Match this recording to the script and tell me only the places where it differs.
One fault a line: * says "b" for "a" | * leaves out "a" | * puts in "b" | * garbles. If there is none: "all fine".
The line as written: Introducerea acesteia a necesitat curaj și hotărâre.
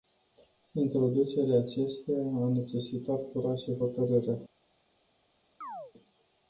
all fine